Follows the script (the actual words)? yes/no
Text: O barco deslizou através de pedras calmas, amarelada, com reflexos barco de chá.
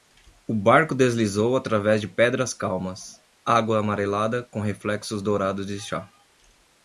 no